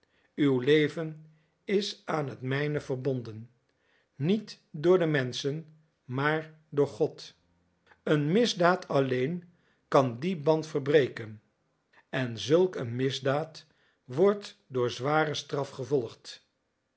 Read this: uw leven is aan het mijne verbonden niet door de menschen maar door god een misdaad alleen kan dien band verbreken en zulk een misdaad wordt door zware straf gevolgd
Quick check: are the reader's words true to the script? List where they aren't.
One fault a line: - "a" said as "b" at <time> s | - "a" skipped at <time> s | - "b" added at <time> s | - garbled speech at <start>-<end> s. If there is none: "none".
none